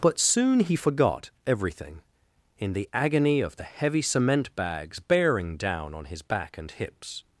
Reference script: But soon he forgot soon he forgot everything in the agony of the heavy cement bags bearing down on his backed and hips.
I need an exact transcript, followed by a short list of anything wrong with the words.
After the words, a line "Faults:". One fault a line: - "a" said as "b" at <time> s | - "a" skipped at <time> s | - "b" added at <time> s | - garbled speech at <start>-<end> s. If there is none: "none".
But soon he forgot everything in the agony of the heavy cement bags bearing down on his back and hips.
Faults:
- "soon he forgot" skipped at 1.3 s
- "backed" said as "back" at 6.2 s